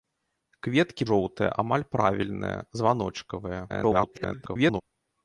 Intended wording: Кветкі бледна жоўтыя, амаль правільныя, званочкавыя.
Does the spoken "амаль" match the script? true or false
true